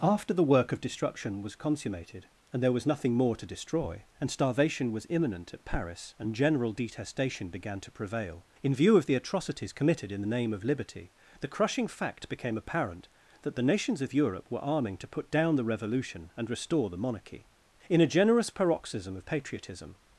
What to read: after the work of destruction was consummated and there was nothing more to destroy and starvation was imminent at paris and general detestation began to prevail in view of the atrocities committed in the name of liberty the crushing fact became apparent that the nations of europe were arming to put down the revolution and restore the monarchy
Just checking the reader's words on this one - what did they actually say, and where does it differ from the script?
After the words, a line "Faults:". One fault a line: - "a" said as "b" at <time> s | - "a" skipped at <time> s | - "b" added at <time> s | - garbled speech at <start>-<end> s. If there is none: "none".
after the work of destruction was consummated and there was nothing more to destroy and starvation was imminent at paris and general detestation began to prevail in view of the atrocities committed in the name of liberty the crushing fact became apparent that the nations of europe were arming to put down the revolution and restore the monarchy in a generous paroxysm of patriotism
Faults:
- "in a generous paroxysm of patriotism" added at 17.9 s